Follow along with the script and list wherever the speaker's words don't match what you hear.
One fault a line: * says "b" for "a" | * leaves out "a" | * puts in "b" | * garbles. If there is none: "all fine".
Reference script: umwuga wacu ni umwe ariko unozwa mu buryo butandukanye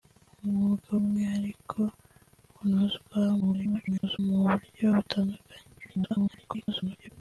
* leaves out "wacu ni"
* garbles
* garbles